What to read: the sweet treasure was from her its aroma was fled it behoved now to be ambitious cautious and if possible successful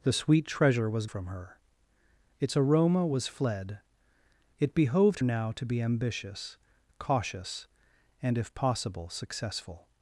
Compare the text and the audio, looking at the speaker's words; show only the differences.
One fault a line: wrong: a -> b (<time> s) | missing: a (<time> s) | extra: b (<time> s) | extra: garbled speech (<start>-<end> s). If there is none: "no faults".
no faults